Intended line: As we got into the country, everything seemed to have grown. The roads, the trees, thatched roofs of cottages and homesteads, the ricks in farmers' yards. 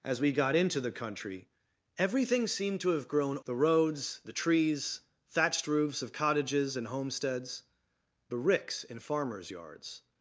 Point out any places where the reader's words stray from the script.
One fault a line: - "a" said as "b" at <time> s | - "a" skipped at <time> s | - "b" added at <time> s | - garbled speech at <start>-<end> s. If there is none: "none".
none